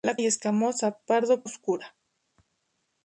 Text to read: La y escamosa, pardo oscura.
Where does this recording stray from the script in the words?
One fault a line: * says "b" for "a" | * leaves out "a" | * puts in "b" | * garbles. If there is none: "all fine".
all fine